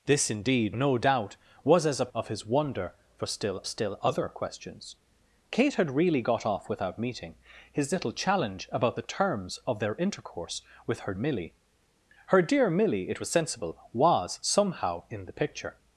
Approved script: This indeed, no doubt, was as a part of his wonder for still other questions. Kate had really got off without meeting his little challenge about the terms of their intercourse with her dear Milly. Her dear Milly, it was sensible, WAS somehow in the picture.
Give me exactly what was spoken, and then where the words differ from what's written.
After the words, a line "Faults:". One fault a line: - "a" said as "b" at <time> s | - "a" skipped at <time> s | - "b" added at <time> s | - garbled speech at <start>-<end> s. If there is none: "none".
This indeed, no doubt, was as a of his wonder for still still other questions. Kate had really got off without meeting his little challenge about the terms of their intercourse with her Milly. Her dear Milly, it was sensible, WAS somehow in the picture.
Faults:
- "part" skipped at 2.1 s
- "still" added at 3.6 s
- "dear" skipped at 11.1 s